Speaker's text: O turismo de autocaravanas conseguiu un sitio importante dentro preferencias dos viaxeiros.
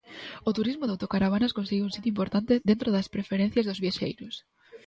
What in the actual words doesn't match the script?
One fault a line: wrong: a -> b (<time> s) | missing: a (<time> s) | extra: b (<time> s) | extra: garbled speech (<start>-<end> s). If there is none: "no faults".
extra: das (3.0 s)